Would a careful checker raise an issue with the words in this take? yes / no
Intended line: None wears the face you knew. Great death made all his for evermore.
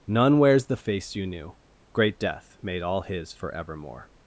no